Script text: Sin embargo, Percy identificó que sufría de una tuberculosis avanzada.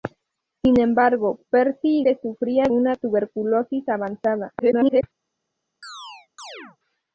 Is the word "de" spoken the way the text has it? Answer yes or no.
no